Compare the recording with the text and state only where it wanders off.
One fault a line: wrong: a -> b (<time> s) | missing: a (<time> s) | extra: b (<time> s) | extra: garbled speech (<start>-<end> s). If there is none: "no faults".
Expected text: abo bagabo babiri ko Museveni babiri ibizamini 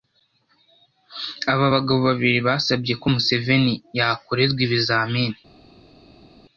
wrong: abo -> aba (1.5 s)
extra: basabye (2.5 s)
wrong: babiri -> yakorerwa (4.0 s)